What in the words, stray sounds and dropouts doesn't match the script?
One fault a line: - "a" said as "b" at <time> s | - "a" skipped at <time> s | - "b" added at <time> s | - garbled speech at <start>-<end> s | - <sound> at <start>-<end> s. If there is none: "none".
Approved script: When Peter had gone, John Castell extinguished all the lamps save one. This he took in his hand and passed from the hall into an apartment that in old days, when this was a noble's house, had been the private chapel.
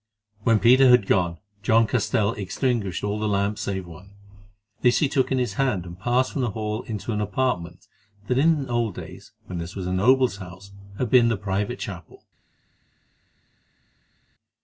none